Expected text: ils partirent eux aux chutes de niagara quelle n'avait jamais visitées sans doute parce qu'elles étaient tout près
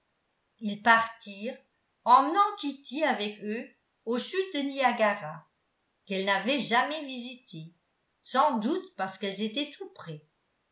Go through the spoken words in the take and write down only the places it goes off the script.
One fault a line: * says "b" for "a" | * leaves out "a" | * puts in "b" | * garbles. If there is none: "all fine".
* puts in "emmenant kitty avec"